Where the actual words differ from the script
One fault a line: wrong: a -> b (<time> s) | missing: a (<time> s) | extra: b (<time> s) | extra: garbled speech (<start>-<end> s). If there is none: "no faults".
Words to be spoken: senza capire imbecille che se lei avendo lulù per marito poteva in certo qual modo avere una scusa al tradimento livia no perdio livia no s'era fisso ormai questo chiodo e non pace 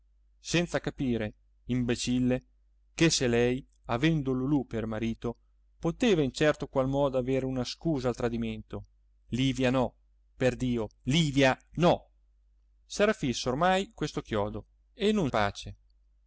no faults